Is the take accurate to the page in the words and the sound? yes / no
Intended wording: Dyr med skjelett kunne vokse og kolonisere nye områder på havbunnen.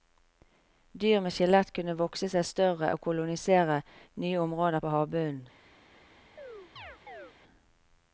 no